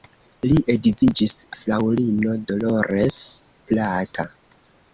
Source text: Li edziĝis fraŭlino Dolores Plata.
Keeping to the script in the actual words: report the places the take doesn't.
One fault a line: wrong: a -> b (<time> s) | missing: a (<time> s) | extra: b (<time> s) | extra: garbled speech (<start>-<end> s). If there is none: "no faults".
no faults